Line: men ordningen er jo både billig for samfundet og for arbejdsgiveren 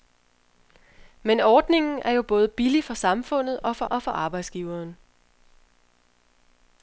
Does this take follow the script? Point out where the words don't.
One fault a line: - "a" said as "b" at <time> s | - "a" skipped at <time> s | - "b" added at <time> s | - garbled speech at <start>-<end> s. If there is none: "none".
- "og for" added at 3.9 s